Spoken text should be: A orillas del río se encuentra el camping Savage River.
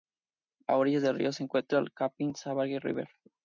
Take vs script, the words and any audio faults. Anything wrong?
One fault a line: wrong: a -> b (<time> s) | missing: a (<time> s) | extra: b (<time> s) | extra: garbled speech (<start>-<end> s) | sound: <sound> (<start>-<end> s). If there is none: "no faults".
no faults